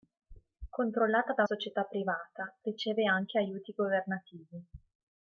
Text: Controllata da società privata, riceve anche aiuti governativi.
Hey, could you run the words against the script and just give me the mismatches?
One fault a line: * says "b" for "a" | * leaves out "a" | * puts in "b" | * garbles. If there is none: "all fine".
all fine